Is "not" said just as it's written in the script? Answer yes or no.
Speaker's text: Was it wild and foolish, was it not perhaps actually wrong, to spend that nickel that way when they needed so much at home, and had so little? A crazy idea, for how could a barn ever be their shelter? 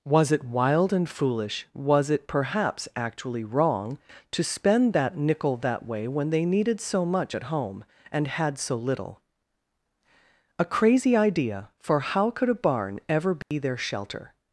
no